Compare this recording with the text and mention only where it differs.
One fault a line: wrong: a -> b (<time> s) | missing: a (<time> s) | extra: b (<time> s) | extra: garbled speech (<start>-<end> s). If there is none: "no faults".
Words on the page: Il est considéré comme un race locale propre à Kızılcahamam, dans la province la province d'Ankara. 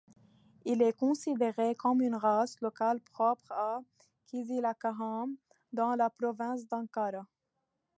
wrong: un -> une (2.0 s)
missing: la province (6.7 s)